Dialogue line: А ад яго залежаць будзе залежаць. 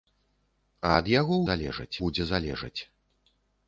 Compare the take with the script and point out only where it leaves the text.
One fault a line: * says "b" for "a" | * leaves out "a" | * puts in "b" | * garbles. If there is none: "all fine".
all fine